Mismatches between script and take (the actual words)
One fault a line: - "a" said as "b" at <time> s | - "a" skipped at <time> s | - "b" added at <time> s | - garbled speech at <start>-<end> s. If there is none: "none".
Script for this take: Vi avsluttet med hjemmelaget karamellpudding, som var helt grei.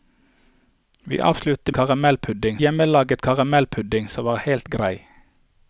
- "med" said as "karamellpudding" at 1.7 s